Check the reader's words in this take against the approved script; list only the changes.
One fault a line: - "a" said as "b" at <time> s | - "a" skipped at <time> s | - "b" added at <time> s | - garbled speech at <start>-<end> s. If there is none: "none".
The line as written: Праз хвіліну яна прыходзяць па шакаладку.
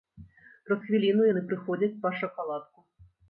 - "яна" said as "яны" at 1.3 s